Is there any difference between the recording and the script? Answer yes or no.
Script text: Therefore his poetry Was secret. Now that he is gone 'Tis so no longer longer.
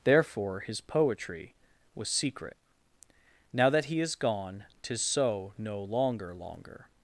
no